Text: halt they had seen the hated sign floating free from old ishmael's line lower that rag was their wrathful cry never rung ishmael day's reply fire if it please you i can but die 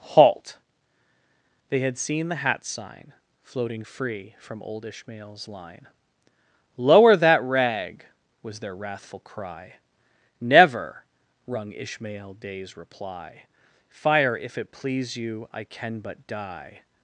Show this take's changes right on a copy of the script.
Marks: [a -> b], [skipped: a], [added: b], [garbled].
halt they had seen the [hated -> hat] sign floating free from old ishmael's line lower that rag was their wrathful cry never rung ishmael day's reply fire if it please you i can but die